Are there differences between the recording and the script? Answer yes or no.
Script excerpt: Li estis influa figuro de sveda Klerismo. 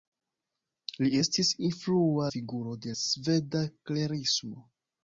no